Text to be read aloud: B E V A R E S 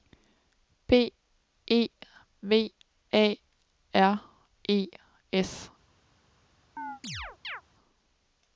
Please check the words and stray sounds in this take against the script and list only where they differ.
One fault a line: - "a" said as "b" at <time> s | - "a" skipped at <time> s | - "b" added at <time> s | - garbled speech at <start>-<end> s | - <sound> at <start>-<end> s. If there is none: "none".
- chirp at 6.8-7.6 s